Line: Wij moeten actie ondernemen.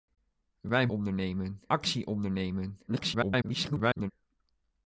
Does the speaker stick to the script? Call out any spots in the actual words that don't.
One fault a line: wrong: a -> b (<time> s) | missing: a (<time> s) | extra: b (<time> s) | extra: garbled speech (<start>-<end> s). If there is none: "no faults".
wrong: moeten -> ondernemen (0.9 s)
extra: garbled speech (2.9-4.1 s)